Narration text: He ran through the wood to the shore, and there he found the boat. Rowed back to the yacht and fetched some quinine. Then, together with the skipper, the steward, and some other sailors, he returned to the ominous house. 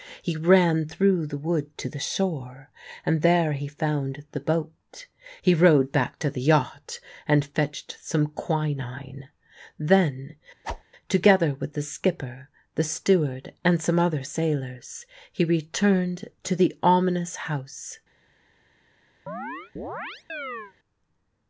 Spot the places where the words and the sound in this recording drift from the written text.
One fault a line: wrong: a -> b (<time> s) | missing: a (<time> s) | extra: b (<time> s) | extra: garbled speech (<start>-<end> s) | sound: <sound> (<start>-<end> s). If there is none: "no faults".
extra: He (5.4 s)
sound: whoosh (10.6-10.8 s)
sound: chirp (19.3-20.7 s)